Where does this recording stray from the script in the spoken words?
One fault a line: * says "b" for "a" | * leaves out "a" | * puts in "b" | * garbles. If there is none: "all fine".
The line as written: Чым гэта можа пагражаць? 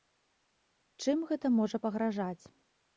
all fine